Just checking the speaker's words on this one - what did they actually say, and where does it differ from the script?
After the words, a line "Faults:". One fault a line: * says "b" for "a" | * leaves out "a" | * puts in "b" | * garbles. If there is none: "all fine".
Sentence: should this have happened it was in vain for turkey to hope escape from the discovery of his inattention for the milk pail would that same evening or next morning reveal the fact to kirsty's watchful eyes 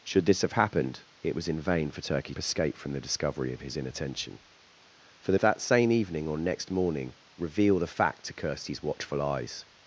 should this have happened it was in vain for turkey escape from the discovery of his inattention for the that same evening or next morning reveal the fact to kirsty's watchful eyes
Faults:
* leaves out "to hope"
* leaves out "milk pail would"